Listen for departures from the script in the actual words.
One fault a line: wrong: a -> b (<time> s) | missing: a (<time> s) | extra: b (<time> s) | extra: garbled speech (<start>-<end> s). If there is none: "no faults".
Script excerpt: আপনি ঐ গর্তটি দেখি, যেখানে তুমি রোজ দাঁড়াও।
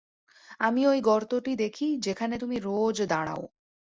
wrong: আপনি -> আমি (0.6 s)